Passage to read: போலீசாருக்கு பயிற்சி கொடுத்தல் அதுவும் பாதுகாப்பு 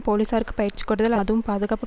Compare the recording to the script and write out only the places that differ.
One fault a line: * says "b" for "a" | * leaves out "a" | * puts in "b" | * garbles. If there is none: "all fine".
all fine